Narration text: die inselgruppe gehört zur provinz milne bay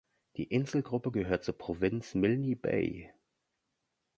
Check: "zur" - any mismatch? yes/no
no